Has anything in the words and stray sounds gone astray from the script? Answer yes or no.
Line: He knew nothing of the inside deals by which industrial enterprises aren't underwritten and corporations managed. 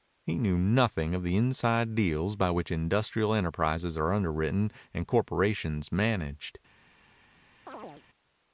yes